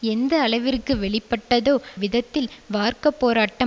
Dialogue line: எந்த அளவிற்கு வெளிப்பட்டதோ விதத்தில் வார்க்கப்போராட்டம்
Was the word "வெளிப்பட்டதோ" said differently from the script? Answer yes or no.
no